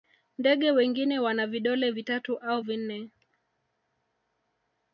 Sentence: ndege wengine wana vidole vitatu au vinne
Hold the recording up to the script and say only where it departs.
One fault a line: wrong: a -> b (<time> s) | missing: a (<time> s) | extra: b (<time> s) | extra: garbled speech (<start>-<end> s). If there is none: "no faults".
no faults